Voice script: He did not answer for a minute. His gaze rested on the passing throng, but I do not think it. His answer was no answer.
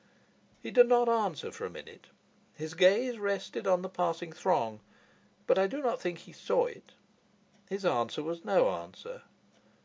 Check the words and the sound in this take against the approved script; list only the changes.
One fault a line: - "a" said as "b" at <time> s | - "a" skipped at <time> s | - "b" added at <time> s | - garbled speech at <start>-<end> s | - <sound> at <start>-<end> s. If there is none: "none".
- "he saw" added at 6.2 s